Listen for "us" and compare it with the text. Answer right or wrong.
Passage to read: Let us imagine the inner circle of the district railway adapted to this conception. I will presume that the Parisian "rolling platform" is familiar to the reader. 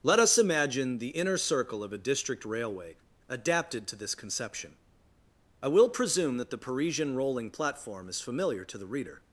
right